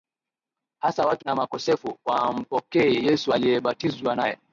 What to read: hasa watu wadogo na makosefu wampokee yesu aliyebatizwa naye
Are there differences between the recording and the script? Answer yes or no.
yes